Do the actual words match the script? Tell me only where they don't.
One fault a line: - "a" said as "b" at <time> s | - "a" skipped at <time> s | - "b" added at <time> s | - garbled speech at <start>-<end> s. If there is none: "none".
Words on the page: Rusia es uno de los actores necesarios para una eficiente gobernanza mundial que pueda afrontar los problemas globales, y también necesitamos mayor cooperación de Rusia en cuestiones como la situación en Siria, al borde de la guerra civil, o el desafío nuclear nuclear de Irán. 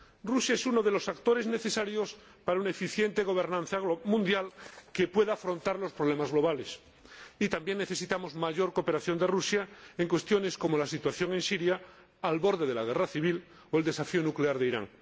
- "nuclear" skipped at 14.6 s